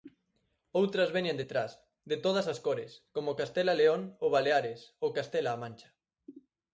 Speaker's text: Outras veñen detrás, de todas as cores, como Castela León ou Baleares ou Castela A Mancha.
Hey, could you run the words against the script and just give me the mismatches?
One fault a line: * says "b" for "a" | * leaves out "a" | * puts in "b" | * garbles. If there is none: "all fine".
all fine